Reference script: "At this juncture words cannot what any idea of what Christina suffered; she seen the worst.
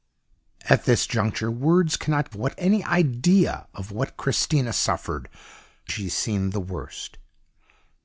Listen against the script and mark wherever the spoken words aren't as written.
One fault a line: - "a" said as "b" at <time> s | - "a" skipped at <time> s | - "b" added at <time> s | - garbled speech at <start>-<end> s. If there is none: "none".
none